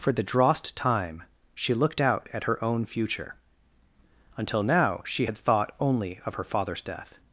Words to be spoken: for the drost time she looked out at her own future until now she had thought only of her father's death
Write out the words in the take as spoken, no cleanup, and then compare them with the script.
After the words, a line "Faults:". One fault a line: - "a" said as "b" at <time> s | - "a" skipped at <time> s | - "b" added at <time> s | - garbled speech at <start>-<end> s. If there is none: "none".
for the drost time she looked out at her own future until now she had thought only of her father's death
Faults:
none